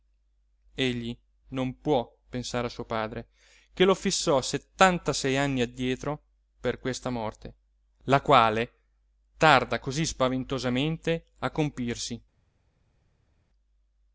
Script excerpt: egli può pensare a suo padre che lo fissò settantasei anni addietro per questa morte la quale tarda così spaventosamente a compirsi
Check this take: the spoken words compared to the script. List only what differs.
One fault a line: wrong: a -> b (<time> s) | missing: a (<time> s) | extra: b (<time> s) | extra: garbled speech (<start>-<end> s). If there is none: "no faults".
extra: non (1.5 s)